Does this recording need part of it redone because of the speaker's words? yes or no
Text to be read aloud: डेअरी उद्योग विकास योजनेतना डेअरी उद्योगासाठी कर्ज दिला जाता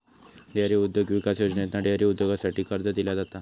no